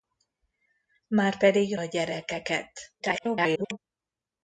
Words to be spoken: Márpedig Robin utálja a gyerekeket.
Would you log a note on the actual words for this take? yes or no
yes